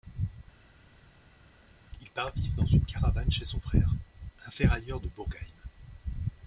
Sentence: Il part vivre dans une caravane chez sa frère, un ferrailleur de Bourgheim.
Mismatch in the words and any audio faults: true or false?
true